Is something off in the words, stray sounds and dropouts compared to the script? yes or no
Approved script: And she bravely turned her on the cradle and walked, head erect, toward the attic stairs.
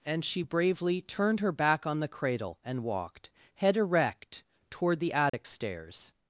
yes